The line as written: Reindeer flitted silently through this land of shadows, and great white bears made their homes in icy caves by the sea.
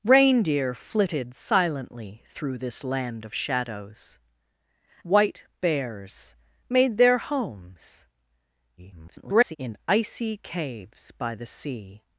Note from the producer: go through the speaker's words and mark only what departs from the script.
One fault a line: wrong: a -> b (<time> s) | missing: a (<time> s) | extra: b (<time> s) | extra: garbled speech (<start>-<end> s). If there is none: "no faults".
missing: and great (4.2 s)
extra: garbled speech (8.8-9.6 s)